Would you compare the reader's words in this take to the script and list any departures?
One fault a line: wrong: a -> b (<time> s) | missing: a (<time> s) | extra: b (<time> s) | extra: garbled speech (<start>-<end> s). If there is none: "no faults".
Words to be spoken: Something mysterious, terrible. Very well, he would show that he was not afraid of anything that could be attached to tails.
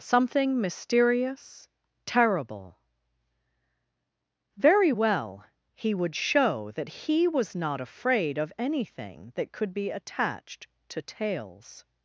no faults